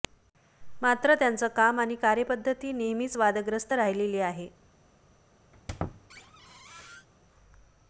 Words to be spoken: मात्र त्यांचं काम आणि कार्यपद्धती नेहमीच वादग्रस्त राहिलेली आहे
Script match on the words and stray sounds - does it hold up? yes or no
no